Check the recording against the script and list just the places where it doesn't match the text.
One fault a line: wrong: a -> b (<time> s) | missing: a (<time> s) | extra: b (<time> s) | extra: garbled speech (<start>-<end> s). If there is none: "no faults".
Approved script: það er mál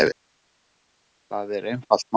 extra: einfalt (1.7 s)